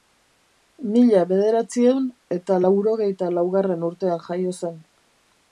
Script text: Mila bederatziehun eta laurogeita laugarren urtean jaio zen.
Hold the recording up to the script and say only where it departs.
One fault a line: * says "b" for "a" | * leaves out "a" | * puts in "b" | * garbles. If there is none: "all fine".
all fine